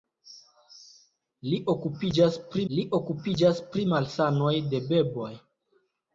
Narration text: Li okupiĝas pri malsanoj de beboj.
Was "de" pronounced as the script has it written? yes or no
yes